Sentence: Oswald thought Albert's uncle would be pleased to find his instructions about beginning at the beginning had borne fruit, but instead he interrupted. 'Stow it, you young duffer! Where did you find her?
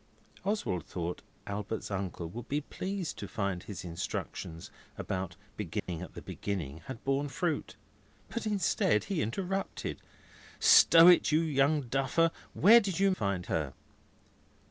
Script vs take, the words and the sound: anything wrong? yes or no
yes